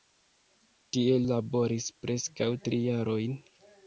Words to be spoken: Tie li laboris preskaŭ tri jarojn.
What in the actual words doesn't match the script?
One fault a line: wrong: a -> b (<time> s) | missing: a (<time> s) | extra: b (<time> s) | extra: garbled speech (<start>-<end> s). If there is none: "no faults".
missing: li (1.2 s)